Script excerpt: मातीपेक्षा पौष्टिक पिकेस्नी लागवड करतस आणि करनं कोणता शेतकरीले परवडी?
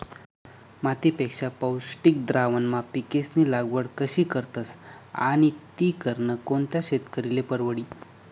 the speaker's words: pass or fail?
fail